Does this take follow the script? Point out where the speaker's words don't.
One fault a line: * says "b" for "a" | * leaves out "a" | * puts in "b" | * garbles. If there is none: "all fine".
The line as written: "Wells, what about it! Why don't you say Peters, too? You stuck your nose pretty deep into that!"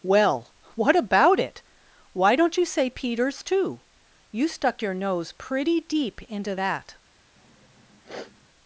* says "Well" for "Wells"